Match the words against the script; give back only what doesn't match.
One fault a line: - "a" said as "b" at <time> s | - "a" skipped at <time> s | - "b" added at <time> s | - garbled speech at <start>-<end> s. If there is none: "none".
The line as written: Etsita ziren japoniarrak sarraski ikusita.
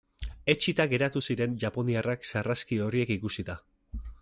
- "geratu" added at 0.9 s
- "horiek" added at 2.9 s